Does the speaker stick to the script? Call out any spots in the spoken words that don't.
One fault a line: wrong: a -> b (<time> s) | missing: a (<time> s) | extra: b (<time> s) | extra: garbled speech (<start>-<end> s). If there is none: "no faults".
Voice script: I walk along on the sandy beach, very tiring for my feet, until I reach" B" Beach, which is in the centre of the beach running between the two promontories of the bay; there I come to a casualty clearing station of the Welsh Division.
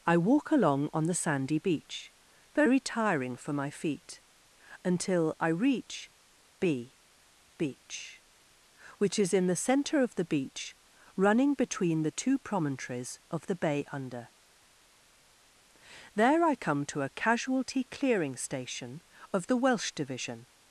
extra: under (13.9 s)